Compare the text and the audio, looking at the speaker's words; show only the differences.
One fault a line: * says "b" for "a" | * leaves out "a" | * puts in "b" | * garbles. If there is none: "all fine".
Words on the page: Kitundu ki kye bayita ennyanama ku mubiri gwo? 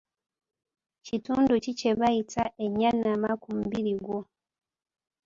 all fine